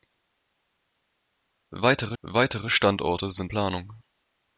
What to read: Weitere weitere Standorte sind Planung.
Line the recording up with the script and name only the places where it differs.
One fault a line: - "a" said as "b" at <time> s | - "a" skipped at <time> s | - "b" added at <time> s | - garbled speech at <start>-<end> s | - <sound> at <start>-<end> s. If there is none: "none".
none